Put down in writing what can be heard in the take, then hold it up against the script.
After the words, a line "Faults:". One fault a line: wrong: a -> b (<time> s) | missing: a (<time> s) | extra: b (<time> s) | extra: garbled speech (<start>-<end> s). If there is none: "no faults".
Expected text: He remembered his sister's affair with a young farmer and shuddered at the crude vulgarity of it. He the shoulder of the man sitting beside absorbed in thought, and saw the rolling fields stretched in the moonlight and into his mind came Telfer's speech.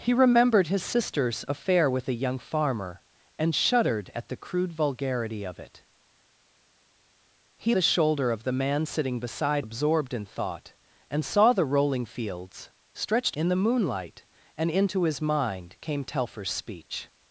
He remembered his sister's affair with a young farmer and shuddered at the crude vulgarity of it. He the shoulder of the man sitting beside absorbed in thought, and saw the rolling fields stretched in the moonlight and into his mind came Telfer's speech.
Faults:
no faults